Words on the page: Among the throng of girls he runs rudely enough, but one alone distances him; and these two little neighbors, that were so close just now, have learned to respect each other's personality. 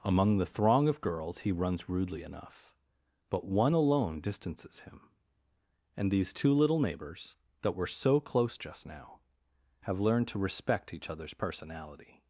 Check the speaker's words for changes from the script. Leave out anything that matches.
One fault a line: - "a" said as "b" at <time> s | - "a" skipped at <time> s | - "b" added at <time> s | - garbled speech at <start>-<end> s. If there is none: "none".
none